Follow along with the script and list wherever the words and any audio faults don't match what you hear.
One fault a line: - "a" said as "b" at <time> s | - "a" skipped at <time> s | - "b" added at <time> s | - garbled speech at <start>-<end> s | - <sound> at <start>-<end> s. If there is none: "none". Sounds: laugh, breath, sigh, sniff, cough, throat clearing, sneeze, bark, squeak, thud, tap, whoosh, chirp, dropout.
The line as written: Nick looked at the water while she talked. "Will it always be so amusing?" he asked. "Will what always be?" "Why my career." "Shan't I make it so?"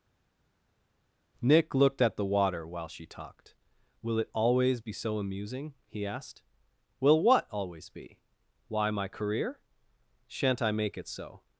none